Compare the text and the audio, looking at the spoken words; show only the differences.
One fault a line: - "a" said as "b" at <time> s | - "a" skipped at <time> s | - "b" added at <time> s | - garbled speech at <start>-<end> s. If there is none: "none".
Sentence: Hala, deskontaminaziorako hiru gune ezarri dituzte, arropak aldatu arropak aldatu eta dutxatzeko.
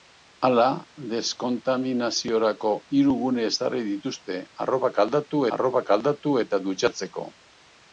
none